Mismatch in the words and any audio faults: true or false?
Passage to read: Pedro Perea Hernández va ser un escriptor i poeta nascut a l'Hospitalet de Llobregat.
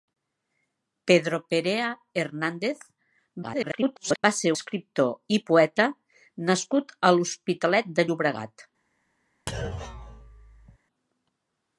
true